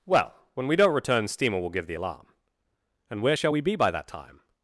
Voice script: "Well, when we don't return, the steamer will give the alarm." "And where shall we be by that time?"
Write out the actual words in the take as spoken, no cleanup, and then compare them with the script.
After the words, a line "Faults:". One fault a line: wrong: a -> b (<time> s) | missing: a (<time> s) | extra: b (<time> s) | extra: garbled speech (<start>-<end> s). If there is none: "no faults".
"Well, when we don't return, steamer will give the alarm." "And where shall we be by that time?"
Faults:
missing: the (1.3 s)